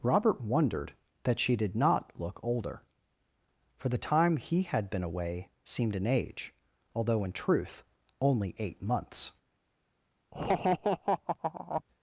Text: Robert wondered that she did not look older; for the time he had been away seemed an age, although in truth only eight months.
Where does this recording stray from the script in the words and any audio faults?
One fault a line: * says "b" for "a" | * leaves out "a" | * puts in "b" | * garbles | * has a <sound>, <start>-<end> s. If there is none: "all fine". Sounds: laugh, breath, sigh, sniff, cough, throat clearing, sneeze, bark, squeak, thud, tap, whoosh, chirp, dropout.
* has a laugh, 10.3-11.8 s